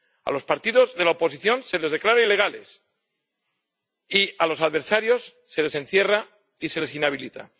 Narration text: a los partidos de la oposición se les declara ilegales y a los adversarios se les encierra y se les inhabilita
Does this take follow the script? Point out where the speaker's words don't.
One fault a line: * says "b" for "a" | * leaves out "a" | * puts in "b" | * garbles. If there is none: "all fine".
all fine